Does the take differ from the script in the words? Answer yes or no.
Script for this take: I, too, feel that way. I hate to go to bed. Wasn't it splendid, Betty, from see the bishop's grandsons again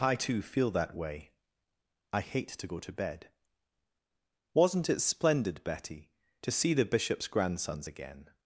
yes